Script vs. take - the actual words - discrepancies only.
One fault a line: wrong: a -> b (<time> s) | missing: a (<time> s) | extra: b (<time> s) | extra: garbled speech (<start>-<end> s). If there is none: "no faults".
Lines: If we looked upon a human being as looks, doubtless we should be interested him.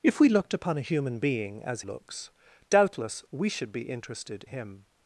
no faults